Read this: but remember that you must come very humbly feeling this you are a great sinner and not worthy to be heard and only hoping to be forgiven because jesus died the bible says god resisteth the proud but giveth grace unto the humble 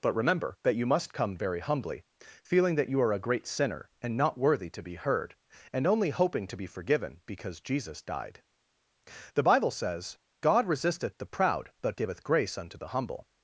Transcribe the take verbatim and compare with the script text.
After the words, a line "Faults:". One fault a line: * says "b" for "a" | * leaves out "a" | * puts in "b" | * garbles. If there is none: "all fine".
but remember that you must come very humbly feeling that you are a great sinner and not worthy to be heard and only hoping to be forgiven because jesus died the bible says god resisteth the proud but giveth grace unto the humble
Faults:
* says "that" for "this"